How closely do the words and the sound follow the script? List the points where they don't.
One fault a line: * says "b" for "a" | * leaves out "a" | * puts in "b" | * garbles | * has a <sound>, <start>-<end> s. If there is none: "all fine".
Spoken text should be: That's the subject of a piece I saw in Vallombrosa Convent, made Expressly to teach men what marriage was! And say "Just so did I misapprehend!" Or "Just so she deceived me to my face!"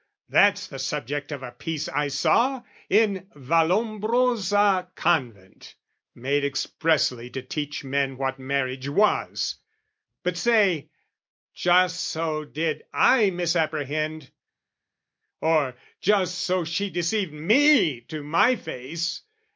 * says "But" for "And"